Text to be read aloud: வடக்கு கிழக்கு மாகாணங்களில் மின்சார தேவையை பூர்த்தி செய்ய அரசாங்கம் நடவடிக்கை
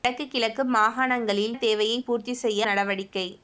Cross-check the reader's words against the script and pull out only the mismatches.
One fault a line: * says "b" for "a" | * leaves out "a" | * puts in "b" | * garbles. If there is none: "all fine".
* leaves out "மின்சார"
* leaves out "அரசாங்கம்"